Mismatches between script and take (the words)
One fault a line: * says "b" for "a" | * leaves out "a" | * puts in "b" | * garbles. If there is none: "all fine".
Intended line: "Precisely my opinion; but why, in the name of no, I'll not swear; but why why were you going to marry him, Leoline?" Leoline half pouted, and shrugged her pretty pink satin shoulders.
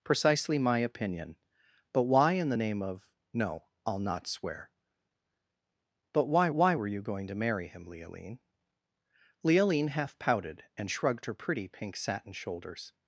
all fine